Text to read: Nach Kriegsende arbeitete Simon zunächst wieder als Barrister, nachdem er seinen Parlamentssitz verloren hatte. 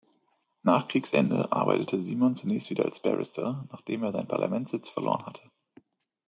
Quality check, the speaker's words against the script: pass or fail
pass